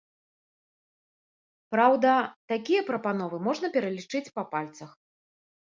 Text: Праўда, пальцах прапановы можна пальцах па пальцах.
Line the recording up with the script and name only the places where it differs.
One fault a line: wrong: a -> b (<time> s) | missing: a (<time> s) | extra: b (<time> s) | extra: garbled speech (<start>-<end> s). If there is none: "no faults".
wrong: пальцах -> такія (2.5 s)
wrong: пальцах -> пералічыць (3.8 s)